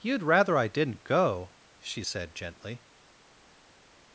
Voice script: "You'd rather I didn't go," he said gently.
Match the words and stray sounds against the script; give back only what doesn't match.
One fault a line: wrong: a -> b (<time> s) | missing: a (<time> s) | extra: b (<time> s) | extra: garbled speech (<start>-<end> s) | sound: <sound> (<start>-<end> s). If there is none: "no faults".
wrong: he -> she (1.8 s)